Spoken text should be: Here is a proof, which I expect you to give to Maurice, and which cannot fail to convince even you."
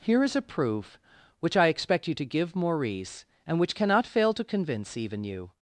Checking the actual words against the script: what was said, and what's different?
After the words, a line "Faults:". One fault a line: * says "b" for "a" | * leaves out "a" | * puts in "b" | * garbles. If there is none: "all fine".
Here is a proof, which I expect you to give Maurice, and which cannot fail to convince even you."
Faults:
* leaves out "to"